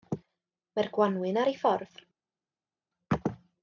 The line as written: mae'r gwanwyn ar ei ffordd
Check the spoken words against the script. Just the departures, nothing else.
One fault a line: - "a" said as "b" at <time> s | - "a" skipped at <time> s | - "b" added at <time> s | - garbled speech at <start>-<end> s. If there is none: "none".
none